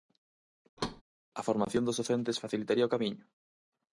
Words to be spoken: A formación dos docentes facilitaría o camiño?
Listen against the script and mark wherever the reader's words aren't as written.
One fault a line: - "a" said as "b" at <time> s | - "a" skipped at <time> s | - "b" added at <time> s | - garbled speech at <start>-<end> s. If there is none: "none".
none